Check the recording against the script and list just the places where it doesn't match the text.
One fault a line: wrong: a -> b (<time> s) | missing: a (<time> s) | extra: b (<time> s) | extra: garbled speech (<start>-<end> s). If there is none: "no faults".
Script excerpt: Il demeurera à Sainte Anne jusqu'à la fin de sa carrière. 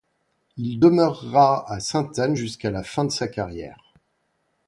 no faults